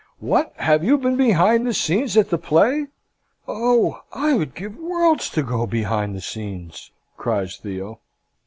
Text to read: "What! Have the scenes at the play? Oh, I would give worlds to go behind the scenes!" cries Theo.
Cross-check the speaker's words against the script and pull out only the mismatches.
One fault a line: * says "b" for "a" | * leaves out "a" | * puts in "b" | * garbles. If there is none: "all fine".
* puts in "you been behind"